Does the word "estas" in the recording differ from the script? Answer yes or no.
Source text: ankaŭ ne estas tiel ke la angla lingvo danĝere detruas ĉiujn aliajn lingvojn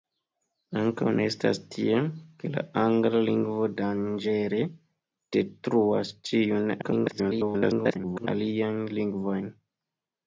no